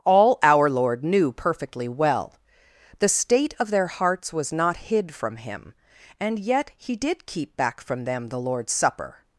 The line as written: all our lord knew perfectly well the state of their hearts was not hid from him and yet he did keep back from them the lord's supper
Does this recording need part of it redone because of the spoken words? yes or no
no